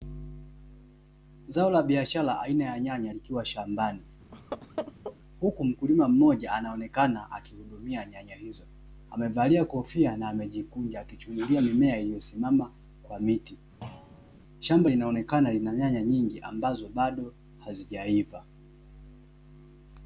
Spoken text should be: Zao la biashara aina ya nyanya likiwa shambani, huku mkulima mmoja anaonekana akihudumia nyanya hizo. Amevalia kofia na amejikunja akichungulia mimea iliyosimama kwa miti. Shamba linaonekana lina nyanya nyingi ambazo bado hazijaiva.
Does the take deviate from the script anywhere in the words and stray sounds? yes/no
yes